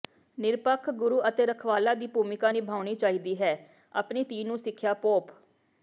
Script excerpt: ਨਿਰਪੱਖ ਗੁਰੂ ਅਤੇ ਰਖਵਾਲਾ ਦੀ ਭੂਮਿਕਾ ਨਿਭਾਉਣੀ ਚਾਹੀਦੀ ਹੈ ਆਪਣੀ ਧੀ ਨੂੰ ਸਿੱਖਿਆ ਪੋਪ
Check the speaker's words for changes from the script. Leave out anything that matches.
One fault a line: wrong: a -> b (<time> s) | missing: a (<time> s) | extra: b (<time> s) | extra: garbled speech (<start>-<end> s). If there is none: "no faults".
no faults